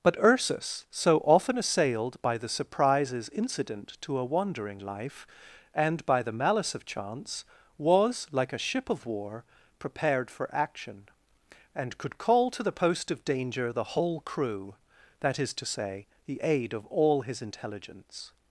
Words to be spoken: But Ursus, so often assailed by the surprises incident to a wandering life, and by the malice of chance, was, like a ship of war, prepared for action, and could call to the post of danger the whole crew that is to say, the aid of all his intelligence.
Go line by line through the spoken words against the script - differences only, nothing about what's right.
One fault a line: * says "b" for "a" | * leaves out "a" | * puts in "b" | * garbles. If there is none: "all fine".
all fine